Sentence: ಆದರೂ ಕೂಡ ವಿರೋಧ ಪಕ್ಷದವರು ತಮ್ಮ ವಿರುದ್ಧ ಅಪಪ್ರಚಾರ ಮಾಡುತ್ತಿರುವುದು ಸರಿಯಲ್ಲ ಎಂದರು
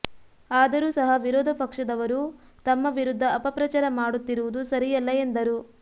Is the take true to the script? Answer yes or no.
no